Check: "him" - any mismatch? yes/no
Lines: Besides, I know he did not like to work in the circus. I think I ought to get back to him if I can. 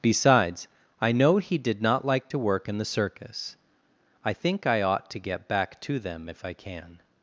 yes